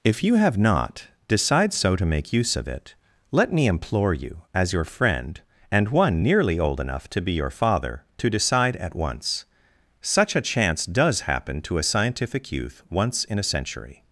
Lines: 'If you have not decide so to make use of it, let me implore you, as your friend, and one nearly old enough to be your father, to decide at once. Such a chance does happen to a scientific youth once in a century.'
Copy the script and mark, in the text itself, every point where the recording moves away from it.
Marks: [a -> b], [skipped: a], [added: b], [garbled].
'If you have not decide so to make use of it, let me implore you, as your friend, and one nearly old enough to be your father, to decide at once. Such a chance does happen to a scientific youth once in a century.'